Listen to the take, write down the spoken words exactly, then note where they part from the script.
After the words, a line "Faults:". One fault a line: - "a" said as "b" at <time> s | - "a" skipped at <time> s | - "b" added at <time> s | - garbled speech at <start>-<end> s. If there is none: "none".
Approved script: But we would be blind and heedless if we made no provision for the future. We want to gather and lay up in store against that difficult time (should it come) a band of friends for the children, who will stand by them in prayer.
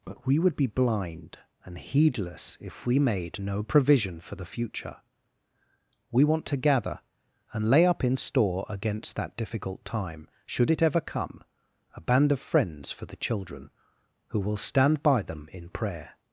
But we would be blind and heedless if we made no provision for the future. We want to gather and lay up in store against that difficult time (should it ever come) a band of friends for the children, who will stand by them in prayer.
Faults:
- "ever" added at 10.8 s